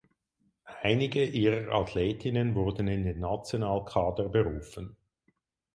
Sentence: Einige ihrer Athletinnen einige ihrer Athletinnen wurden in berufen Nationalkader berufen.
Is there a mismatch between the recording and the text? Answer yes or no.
yes